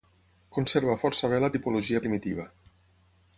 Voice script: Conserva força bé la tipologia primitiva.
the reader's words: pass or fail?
pass